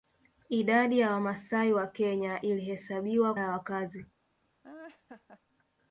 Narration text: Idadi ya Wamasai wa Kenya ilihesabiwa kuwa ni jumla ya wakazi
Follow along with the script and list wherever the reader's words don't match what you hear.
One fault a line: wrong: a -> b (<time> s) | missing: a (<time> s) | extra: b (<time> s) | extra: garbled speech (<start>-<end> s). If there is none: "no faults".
missing: kuwa ni jumla (3.3 s)